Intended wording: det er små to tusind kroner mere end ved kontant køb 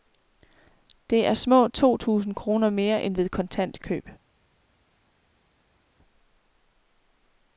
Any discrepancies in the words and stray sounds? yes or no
no